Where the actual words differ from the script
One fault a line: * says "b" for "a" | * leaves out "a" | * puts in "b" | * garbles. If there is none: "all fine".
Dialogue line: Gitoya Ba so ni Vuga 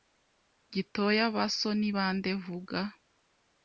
* puts in "bande"